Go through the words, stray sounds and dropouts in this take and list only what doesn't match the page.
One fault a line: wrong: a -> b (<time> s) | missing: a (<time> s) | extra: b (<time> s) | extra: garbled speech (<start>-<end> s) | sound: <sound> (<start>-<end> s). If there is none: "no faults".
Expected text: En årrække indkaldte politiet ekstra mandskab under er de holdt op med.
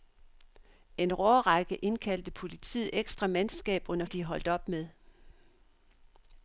no faults